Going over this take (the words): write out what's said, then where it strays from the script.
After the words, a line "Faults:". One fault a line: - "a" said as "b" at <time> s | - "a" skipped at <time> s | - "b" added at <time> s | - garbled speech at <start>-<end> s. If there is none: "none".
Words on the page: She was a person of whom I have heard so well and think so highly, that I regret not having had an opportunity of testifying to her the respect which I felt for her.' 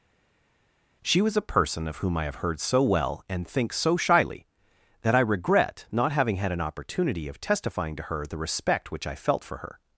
She was a person of whom I have heard so well and think so shyly, that I regret not having had an opportunity of testifying to her the respect which I felt for her.'
Faults:
- "highly" said as "shyly" at 4.0 s